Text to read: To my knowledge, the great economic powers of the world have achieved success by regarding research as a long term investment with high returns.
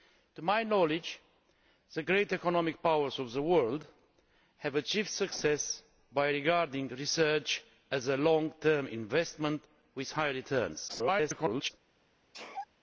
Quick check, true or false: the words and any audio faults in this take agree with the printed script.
false